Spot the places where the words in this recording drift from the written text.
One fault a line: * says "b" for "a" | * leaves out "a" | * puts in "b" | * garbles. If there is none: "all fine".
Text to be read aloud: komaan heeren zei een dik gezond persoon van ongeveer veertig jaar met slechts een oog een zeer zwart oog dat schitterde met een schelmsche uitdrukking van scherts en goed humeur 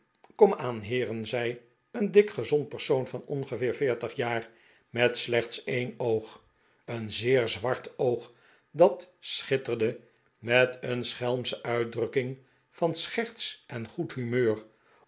all fine